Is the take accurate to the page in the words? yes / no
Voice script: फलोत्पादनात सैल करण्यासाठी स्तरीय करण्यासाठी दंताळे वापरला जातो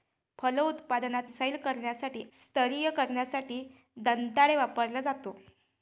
yes